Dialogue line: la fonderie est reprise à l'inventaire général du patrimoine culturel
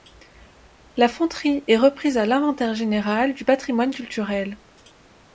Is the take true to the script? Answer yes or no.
yes